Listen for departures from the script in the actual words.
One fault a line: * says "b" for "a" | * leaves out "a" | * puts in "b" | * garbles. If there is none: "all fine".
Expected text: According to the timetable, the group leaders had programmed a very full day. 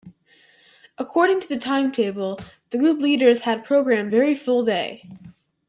* leaves out "a"